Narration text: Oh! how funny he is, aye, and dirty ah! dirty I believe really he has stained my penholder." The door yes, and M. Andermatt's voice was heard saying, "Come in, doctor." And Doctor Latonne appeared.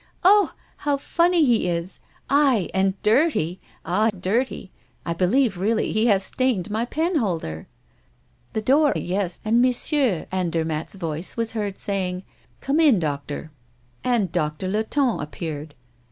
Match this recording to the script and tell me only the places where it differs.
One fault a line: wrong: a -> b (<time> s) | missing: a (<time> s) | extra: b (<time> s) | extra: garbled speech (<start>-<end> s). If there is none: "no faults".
no faults